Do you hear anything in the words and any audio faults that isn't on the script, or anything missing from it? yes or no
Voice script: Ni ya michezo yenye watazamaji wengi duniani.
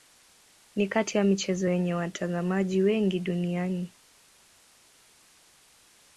yes